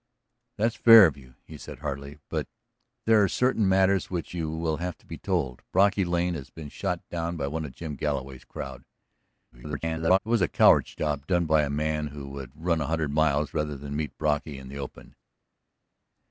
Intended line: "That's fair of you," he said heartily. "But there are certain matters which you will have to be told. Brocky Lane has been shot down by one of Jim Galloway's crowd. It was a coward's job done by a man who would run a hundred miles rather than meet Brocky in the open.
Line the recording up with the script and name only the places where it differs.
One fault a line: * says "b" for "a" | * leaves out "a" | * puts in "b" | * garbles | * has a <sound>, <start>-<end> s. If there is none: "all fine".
* garbles